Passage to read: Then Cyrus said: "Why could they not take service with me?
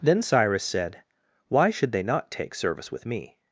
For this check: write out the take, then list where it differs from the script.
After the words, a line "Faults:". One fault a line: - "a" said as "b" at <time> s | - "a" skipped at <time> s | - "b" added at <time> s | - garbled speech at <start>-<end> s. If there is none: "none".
Then Cyrus said: "Why should they not take service with me?
Faults:
- "could" said as "should" at 1.7 s